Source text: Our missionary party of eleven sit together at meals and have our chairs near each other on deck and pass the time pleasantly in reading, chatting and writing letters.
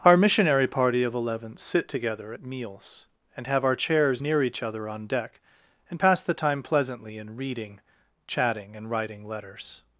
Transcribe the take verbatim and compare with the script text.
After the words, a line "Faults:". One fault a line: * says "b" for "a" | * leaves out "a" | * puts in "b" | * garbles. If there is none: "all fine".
Our missionary party of eleven sit together at meals and have our chairs near each other on deck and pass the time pleasantly in reading, chatting and writing letters.
Faults:
all fine